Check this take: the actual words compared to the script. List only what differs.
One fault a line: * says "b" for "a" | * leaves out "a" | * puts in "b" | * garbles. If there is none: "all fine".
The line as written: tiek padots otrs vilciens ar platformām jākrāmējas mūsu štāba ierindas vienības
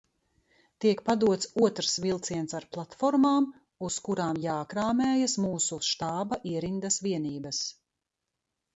* puts in "uz kurām"